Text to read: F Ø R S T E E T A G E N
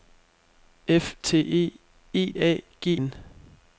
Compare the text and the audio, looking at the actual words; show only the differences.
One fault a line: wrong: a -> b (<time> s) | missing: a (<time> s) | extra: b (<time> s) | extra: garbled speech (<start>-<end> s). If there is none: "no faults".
missing: Ø R S (1.1 s)
missing: T (2.3 s)
missing: E (2.9 s)